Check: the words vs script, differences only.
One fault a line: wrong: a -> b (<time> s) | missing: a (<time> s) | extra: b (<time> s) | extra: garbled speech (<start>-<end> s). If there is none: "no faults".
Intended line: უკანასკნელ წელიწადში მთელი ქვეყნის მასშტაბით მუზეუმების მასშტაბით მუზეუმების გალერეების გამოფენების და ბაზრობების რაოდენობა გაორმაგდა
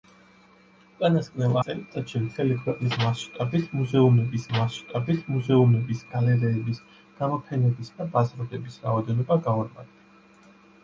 no faults